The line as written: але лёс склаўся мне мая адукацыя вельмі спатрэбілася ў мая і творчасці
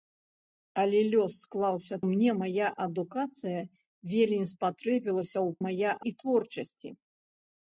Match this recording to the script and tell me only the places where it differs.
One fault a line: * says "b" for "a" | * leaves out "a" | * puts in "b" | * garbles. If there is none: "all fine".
all fine